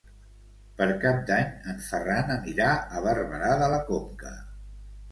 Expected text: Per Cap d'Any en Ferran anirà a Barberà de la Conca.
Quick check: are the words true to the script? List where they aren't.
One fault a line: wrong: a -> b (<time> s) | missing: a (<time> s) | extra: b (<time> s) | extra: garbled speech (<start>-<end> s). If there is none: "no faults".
no faults